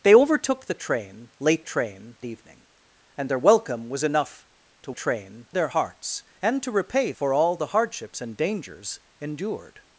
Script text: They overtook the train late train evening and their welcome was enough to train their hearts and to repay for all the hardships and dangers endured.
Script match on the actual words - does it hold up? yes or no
yes